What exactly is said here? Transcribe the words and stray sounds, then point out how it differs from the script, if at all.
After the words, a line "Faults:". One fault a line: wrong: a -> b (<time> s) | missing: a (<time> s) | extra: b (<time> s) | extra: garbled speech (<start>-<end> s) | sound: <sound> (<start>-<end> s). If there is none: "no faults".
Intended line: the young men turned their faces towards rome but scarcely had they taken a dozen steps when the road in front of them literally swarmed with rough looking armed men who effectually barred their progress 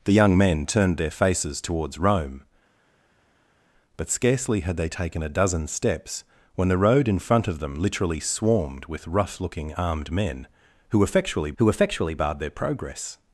the young men turned their faces towards rome but scarcely had they taken a dozen steps when the road in front of them literally swarmed with rough looking armed men who effectually who effectually barred their progress
Faults:
extra: who effectually (11.6 s)